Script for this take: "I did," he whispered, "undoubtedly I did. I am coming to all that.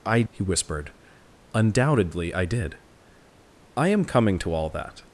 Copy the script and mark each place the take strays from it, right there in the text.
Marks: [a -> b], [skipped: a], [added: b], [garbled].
"I [skipped: did,"] he whispered, "undoubtedly I did. I am coming to all that.